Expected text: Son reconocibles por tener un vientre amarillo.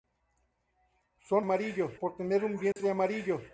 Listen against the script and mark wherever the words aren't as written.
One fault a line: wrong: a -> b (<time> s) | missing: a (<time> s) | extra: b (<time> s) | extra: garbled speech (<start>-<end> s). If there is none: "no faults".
wrong: reconocibles -> amarillo (1.4 s)